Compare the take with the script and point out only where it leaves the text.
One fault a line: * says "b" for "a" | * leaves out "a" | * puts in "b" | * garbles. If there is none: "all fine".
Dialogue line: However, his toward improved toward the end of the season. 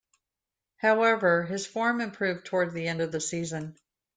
* says "form" for "toward"